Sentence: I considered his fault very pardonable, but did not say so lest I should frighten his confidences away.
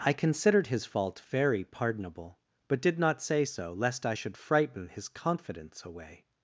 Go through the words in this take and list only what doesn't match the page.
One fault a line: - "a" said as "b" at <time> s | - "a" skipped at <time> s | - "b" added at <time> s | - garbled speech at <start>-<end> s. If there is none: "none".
- "confidences" said as "confidence" at 5.1 s